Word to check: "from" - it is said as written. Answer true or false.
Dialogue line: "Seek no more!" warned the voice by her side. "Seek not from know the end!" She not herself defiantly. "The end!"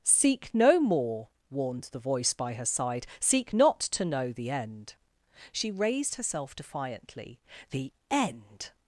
false